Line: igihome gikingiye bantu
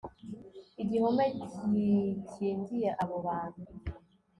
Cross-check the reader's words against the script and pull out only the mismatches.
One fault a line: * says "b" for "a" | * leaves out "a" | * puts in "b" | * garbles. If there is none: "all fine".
* puts in "abo"